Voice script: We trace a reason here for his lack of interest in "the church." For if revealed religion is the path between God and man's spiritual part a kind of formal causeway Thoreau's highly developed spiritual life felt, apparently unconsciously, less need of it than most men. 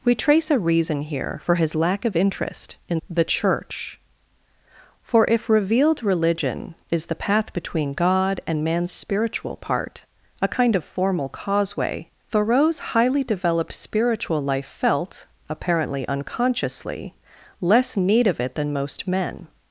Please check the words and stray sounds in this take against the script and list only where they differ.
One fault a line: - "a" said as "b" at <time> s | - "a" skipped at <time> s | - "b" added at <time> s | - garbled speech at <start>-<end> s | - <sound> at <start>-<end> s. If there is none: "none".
none